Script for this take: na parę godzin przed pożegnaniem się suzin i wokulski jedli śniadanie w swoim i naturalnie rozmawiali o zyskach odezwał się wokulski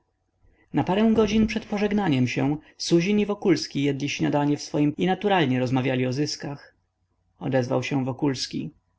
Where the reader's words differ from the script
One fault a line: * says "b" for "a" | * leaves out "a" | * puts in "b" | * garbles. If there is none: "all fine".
all fine